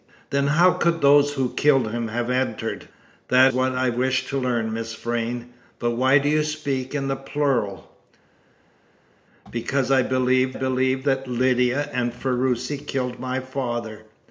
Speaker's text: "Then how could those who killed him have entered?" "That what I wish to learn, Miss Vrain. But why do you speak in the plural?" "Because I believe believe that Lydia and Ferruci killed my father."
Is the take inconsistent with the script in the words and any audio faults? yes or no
no